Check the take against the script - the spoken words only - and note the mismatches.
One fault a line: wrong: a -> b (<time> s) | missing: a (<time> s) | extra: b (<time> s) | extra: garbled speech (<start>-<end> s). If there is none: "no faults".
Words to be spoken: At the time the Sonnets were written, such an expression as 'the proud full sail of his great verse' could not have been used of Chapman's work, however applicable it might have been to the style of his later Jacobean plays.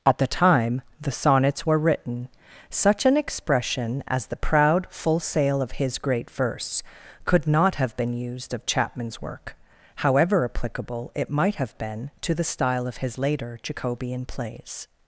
no faults